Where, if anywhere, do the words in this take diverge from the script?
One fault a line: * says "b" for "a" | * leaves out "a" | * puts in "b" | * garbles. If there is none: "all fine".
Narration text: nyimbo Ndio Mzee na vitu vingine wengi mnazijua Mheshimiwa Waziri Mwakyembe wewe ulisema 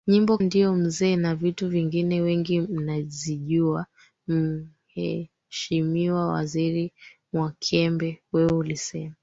all fine